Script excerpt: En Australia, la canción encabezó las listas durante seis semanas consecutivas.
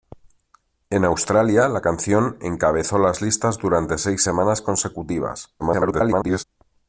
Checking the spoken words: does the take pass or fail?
fail